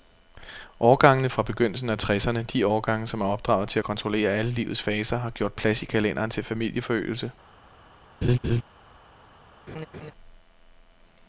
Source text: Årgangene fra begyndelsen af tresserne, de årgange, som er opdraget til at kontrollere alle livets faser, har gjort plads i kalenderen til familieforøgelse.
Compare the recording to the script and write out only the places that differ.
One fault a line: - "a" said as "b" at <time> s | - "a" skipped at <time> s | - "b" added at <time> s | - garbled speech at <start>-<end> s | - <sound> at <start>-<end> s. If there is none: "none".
- laugh at 8.2-8.6 s
- laugh at 9.7-10.1 s